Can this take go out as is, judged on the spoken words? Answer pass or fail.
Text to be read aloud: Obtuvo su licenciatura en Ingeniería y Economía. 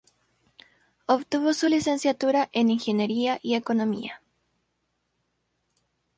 pass